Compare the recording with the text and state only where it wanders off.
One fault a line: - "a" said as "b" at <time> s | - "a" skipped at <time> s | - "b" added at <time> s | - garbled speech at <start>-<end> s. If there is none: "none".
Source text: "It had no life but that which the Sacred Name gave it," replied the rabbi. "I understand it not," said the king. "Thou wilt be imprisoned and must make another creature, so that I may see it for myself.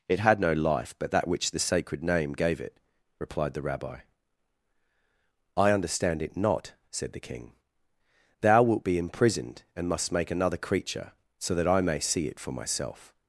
none